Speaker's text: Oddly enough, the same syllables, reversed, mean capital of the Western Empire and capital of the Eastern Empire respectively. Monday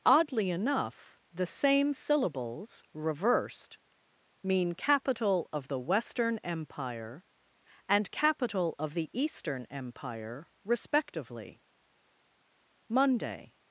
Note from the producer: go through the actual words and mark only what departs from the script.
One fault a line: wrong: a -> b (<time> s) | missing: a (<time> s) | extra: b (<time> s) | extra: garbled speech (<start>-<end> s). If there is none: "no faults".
no faults